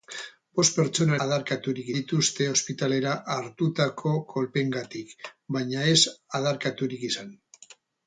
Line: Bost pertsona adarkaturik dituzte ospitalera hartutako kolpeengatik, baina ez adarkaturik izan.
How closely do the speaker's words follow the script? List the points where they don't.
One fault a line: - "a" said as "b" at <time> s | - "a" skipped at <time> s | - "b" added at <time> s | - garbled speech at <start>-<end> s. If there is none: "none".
none